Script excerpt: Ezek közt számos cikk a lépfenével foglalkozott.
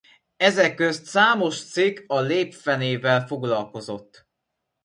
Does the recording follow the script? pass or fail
pass